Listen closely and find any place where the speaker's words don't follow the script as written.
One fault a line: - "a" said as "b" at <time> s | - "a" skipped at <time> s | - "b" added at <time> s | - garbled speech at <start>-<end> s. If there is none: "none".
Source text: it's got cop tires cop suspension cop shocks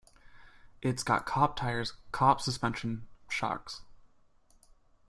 - "cop" skipped at 3.0 s